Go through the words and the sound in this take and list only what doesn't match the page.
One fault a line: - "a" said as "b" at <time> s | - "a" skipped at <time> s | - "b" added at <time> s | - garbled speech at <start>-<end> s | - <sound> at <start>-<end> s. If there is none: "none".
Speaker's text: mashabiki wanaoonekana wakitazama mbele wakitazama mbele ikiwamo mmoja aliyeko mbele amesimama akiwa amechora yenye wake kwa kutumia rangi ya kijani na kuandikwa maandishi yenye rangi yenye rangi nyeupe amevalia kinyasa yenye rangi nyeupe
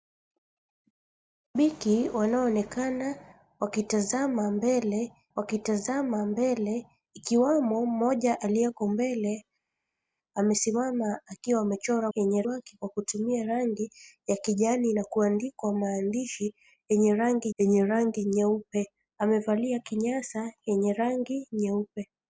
none